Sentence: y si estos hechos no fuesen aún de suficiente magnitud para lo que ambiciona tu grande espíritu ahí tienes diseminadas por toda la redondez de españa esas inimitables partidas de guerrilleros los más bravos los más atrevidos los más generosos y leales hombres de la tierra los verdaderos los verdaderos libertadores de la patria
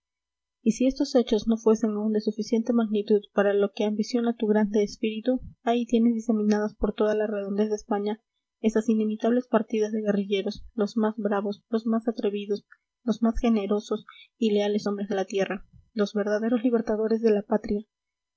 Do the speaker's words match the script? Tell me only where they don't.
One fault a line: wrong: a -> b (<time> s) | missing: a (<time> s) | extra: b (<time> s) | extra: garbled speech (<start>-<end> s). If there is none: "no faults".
missing: los verdaderos (16.6 s)